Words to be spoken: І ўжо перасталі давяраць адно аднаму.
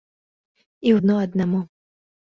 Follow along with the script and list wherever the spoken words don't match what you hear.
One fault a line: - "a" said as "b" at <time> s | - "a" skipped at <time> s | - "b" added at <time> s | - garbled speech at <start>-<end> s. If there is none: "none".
- "ўжо перасталі давяраць" skipped at 0.9 s